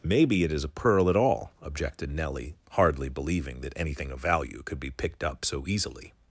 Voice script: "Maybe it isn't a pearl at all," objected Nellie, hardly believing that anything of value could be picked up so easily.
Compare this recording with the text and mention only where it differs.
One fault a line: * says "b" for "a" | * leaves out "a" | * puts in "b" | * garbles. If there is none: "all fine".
* says "is" for "isn't"